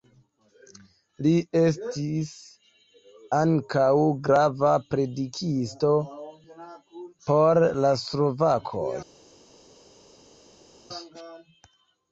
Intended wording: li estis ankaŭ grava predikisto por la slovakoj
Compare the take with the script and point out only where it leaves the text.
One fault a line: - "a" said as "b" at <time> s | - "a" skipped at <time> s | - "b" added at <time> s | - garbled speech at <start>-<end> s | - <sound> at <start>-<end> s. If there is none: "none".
none